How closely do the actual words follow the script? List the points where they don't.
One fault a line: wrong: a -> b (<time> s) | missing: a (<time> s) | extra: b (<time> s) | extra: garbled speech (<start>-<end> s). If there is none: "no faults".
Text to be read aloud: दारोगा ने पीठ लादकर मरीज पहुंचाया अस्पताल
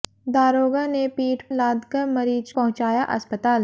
no faults